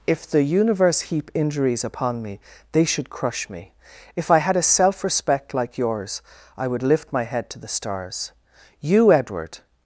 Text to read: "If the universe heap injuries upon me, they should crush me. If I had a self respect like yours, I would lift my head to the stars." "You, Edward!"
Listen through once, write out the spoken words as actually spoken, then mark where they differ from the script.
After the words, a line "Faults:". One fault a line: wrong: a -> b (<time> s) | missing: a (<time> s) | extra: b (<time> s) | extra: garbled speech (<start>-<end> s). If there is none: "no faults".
"If the universe heap injuries upon me, they should crush me. If I had a self respect like yours, I would lift my head to the stars." "You, Edward!"
Faults:
no faults